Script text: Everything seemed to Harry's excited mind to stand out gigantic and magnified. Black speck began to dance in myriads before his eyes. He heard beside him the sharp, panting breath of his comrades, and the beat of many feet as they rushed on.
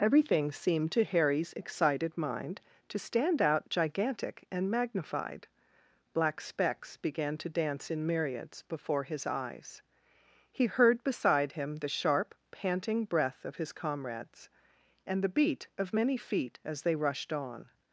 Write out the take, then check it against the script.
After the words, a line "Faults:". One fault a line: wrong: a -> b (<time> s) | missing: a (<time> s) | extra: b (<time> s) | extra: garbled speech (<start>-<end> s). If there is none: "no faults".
Everything seemed to Harry's excited mind to stand out gigantic and magnified. Black specks began to dance in myriads before his eyes. He heard beside him the sharp, panting breath of his comrades, and the beat of many feet as they rushed on.
Faults:
wrong: speck -> specks (6.4 s)